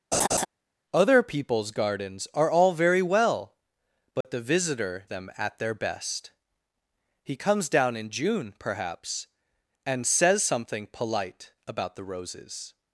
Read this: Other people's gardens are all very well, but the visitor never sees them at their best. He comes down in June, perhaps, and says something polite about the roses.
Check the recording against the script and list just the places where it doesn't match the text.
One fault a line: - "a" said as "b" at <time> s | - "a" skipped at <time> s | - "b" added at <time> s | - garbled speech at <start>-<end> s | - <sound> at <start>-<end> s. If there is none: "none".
- laugh at 0.1-0.5 s
- dropout at 4.2-4.2 s
- "never sees" skipped at 5.0 s